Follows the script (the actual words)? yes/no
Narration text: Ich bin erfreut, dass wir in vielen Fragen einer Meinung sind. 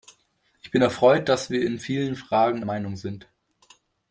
no